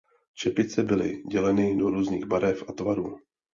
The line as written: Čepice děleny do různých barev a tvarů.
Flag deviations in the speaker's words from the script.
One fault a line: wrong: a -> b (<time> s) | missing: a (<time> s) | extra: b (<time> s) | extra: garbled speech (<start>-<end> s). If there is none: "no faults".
extra: byly (0.8 s)